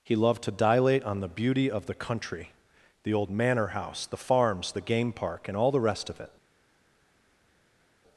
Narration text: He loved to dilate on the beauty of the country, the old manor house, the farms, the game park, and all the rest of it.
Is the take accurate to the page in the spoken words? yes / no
yes